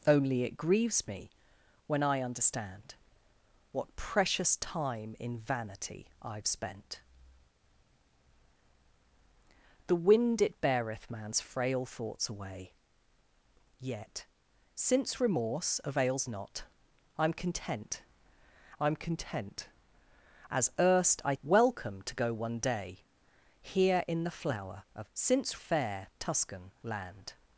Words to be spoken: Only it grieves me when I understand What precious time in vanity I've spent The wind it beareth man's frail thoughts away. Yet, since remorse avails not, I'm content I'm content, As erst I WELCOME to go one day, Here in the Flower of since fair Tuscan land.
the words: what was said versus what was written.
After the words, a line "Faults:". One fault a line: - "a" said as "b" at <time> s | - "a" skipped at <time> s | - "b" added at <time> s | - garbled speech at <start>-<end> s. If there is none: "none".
Only it grieves me when I understand What precious time in vanity I've spent The wind it beareth man's frail thoughts away. Yet, since remorse avails not, I'm content I'm content, As erst I WELCOME to go one day, Here in the Flower of since fair Tuscan land.
Faults:
none